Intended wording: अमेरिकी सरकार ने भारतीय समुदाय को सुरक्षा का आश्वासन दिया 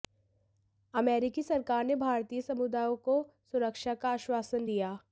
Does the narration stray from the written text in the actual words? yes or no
no